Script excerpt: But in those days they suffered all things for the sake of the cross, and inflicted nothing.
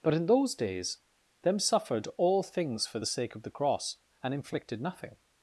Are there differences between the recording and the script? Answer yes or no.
yes